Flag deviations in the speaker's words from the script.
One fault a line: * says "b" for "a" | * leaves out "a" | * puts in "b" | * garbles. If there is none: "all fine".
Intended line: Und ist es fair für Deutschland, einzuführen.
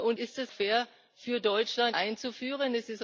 all fine